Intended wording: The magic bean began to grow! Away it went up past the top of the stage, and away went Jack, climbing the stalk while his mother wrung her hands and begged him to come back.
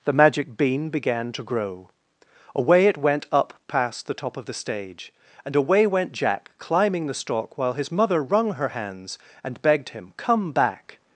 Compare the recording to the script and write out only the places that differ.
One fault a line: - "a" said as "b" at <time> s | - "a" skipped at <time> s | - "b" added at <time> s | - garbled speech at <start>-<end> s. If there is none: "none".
- "to" skipped at 10.1 s